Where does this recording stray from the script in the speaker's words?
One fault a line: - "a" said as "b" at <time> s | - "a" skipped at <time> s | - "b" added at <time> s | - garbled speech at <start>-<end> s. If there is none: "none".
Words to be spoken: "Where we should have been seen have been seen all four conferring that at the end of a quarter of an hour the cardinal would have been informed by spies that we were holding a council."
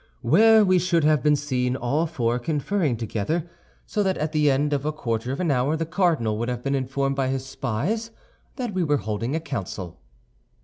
- "have been seen" skipped at 1.8 s
- "together so" added at 3.0 s
- "his" added at 7.3 s